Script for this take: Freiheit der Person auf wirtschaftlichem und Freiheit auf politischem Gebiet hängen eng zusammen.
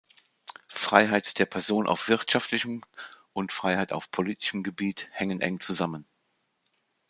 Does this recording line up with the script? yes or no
yes